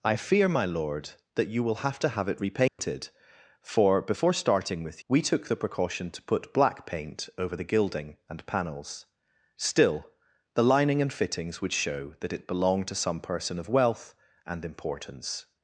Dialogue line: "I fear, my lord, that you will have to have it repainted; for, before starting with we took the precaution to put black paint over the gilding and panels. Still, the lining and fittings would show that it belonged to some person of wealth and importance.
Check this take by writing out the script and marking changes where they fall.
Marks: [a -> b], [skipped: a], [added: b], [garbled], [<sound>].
"I fear, my lord, that you will have to have it repainted; [dropout] for, before starting with we took the precaution to put black paint over the gilding and panels. Still, the lining and fittings would show that it belonged to some person of wealth and importance.